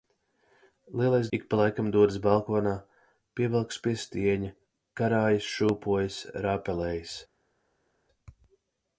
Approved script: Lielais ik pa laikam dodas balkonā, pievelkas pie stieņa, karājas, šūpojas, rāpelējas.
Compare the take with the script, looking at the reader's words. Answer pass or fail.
pass